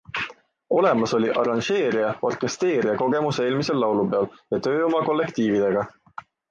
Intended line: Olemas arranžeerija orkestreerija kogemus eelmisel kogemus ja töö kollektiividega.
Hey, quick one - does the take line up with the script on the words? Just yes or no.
no